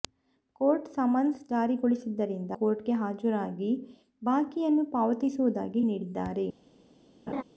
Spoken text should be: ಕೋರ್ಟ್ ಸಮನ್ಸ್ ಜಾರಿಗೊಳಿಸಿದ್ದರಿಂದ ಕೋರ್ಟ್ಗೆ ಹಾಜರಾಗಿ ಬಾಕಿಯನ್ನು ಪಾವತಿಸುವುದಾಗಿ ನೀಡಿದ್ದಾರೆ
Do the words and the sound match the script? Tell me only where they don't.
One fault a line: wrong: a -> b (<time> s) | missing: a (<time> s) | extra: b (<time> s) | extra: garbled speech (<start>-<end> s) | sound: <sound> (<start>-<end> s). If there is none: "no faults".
sound: laugh (7.3-7.4 s)